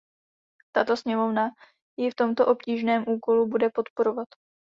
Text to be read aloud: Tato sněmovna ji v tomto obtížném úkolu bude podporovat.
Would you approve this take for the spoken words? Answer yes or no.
yes